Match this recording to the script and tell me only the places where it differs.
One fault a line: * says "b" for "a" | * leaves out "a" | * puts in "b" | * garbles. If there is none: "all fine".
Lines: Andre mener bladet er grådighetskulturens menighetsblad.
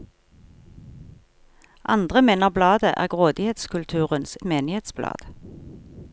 all fine